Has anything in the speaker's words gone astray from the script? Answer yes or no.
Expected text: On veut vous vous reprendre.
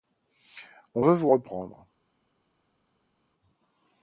yes